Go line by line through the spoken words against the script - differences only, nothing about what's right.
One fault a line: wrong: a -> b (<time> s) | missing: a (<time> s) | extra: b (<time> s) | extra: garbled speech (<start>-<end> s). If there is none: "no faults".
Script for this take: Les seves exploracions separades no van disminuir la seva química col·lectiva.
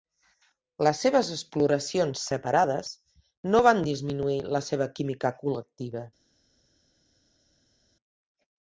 no faults